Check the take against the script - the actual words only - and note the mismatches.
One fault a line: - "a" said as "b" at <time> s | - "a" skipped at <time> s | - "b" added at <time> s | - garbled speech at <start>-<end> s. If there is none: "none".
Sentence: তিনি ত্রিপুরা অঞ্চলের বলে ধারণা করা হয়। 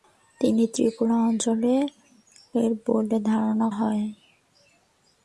- "করা" skipped at 3.7 s